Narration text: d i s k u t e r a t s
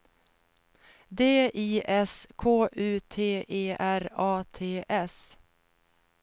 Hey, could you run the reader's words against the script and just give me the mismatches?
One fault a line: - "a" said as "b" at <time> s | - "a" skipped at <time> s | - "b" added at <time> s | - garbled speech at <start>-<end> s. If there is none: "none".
none